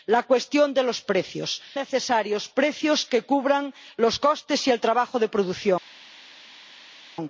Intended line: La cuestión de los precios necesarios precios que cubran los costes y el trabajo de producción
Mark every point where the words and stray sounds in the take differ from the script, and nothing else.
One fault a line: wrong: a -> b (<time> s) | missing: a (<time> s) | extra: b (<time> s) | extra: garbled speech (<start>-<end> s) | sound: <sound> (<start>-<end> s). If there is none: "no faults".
no faults